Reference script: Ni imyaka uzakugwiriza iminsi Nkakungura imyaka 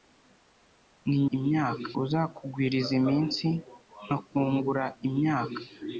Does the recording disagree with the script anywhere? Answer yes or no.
no